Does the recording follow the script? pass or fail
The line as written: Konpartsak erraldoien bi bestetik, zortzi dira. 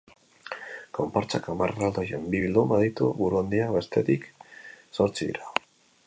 fail